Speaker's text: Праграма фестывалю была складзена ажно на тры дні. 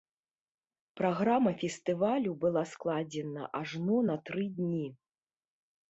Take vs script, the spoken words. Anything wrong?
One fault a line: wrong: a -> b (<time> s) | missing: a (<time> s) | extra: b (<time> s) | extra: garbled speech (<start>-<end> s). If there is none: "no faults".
no faults